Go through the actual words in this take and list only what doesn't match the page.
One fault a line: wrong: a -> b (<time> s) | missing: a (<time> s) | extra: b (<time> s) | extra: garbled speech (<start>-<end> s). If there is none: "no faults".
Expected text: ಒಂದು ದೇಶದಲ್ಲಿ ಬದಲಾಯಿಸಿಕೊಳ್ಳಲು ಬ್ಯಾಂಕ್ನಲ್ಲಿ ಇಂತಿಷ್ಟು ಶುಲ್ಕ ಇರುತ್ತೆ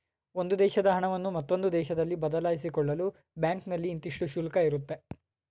extra: ದೇಶದ ಹಣವನ್ನು ಮತ್ತೊಂದು (0.6 s)